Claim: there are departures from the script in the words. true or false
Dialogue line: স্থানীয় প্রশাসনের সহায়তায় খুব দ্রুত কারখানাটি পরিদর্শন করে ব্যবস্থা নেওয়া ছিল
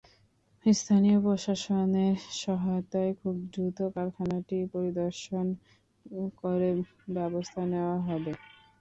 true